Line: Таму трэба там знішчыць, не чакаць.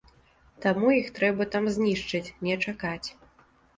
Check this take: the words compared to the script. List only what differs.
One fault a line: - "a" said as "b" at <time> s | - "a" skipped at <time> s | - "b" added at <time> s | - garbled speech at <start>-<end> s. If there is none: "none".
- "іх" added at 1.0 s